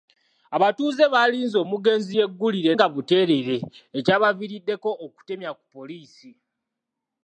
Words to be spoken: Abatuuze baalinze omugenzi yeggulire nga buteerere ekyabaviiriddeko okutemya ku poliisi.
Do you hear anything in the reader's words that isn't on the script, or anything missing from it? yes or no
no